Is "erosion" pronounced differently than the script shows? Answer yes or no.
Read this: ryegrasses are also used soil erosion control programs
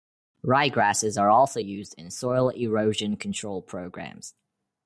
no